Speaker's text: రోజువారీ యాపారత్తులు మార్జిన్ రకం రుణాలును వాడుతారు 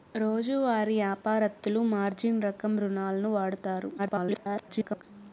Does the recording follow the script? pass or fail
fail